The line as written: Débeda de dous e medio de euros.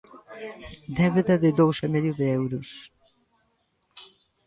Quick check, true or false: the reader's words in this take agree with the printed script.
true